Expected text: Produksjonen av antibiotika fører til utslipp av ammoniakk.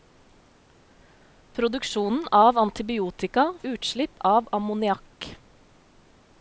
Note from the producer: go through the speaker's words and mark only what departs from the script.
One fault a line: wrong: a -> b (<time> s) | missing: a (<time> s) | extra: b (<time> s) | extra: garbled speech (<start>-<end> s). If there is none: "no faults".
missing: fører til (3.5 s)